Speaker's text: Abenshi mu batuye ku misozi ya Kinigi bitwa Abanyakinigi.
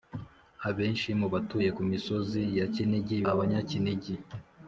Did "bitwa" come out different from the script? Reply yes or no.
yes